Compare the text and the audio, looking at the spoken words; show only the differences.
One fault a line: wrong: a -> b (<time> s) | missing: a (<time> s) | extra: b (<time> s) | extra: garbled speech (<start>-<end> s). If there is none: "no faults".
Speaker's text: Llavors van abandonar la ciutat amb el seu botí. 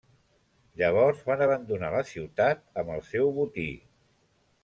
no faults